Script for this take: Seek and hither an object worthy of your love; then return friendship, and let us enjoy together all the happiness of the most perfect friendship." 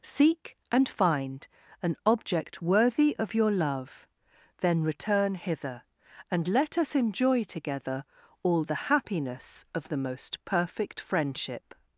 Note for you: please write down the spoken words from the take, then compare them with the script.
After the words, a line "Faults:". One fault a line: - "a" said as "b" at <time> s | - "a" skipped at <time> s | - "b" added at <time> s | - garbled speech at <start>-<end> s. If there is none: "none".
Seek and find an object worthy of your love; then return hither, and let us enjoy together all the happiness of the most perfect friendship."
Faults:
- "hither" said as "find" at 0.9 s
- "friendship" said as "hither" at 5.3 s